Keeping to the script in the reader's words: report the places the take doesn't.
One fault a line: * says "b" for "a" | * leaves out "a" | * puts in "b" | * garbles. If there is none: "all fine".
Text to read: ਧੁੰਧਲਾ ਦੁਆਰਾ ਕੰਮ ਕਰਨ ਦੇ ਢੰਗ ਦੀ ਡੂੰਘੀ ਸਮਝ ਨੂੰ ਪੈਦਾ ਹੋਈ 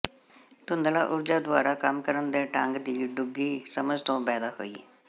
* puts in "ਊਰਜਾ"
* says "ਤੋਂ" for "ਨੂੰ"